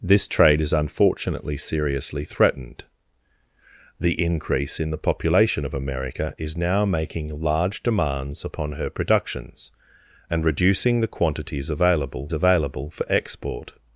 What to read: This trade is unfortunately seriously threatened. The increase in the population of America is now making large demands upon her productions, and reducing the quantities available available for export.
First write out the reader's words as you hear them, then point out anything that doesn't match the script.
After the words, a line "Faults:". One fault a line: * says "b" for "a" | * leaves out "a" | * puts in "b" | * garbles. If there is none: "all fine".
This trade is unfortunately seriously threatened. The increase in the population of America is now making large demands upon her productions, and reducing the quantities available available for export.
Faults:
all fine